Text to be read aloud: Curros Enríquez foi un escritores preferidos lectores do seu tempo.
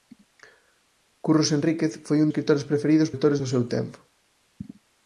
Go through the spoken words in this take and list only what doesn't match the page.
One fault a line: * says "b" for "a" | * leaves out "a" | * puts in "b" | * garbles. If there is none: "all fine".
all fine